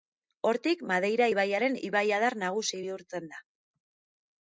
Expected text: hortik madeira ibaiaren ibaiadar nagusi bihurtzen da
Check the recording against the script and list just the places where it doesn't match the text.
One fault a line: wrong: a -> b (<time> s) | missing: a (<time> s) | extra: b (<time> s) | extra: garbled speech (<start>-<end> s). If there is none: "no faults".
no faults